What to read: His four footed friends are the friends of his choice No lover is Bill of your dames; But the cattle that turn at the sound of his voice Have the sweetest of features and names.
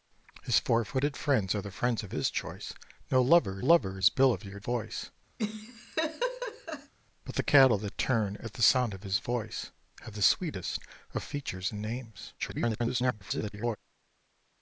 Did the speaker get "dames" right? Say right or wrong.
wrong